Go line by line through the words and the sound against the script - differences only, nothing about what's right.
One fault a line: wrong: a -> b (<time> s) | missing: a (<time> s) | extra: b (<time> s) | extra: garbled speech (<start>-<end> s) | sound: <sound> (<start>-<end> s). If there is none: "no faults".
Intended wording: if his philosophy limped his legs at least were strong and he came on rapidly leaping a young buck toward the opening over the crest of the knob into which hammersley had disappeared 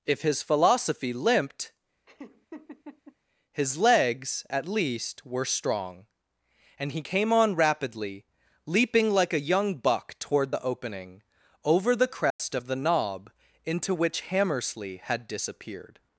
sound: laugh (2.1-3.2 s)
extra: like (9.1 s)
sound: dropout (12.3-12.4 s)